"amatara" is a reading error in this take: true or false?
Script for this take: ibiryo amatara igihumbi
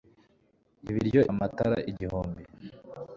false